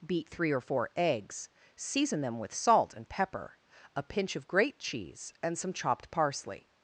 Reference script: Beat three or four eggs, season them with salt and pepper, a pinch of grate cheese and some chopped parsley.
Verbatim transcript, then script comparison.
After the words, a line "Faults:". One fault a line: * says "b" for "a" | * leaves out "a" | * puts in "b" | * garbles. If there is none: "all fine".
Beat three or four eggs, season them with salt and pepper, a pinch of grate cheese and some chopped parsley.
Faults:
all fine